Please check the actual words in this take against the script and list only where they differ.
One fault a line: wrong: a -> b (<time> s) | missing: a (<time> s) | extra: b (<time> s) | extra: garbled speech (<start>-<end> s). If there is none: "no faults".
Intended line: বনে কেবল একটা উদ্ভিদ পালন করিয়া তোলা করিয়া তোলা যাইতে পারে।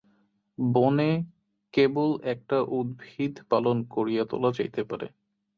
missing: করিয়া তোলা (4.5 s)